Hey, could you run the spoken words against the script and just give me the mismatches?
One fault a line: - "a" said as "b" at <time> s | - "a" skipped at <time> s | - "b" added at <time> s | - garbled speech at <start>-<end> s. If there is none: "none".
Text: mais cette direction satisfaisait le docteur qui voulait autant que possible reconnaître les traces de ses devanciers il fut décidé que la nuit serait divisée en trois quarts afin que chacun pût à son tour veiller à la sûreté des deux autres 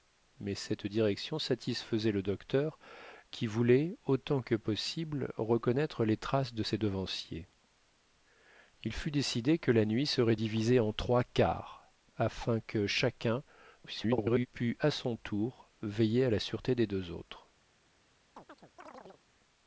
- garbled speech at 13.8-14.5 s